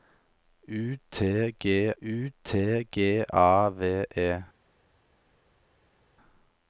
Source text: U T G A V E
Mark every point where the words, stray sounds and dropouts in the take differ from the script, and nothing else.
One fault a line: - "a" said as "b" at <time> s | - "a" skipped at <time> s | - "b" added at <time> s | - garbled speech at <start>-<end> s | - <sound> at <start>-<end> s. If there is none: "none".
- "u T G" added at 2.0 s